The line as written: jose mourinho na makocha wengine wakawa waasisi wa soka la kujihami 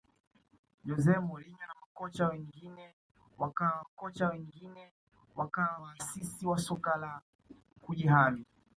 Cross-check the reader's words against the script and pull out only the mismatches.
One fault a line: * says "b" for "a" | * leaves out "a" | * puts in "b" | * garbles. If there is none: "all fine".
* puts in "makocha wengine wakawa"